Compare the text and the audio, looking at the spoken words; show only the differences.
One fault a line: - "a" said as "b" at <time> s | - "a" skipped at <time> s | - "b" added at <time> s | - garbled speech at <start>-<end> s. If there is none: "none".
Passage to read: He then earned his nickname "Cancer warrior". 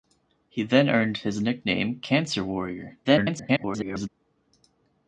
- garbled speech at 3.0-4.1 s